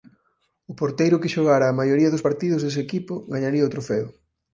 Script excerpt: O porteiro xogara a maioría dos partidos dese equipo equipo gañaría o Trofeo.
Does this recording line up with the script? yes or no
no